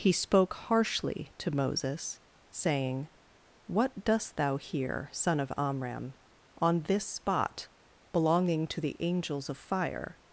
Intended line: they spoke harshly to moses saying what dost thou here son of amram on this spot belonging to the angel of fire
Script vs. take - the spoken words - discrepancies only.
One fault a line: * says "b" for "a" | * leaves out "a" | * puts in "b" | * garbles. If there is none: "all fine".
* says "he" for "they"
* says "angels" for "angel"